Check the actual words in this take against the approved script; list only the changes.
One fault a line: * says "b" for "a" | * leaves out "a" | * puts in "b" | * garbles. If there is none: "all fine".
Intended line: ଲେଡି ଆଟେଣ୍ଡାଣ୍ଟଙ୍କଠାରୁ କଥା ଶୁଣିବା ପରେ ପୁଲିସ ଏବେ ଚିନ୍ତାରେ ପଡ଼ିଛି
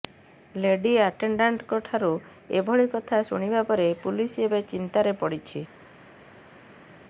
* puts in "ଏଭଳି"